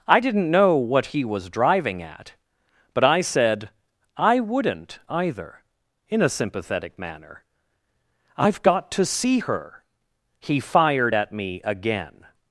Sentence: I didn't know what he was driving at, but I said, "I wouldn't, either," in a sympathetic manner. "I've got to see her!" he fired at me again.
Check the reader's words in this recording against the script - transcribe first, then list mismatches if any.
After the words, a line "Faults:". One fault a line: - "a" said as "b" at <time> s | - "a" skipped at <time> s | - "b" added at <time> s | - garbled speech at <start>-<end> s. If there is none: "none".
I didn't know what he was driving at, but I said, "I wouldn't, either," in a sympathetic manner. "I've got to see her!" he fired at me again.
Faults:
none